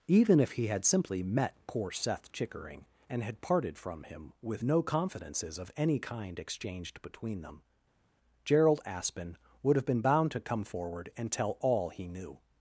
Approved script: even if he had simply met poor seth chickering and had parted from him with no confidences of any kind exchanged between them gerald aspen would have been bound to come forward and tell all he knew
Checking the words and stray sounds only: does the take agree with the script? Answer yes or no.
yes